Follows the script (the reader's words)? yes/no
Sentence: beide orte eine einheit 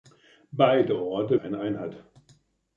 yes